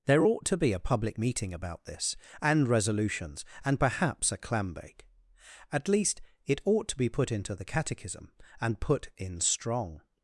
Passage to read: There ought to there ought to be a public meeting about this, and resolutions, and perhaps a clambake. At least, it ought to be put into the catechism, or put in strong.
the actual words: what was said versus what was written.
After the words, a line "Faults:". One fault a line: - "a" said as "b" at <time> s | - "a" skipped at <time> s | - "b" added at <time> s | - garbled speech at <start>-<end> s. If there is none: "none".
There ought to be a public meeting about this, and resolutions, and perhaps a clambake. At least, it ought to be put into the catechism, and put in strong.
Faults:
- "there ought to" skipped at 0.6 s
- "or" said as "and" at 8.6 s